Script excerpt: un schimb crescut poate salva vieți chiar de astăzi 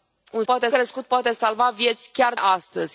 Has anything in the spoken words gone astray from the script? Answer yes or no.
yes